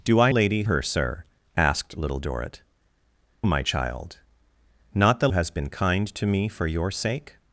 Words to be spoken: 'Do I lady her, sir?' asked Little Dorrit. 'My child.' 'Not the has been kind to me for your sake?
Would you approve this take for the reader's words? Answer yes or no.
yes